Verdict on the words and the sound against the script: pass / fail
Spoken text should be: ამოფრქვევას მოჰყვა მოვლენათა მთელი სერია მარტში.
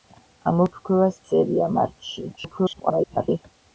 fail